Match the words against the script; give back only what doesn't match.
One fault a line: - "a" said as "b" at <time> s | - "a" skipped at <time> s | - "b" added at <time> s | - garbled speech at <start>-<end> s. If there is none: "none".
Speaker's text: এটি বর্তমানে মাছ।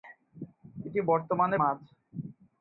none